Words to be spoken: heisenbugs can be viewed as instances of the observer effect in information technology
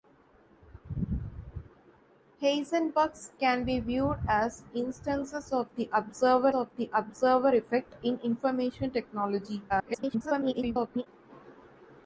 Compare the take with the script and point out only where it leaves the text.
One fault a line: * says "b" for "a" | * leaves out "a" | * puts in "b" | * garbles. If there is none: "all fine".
* puts in "of the observer"
* garbles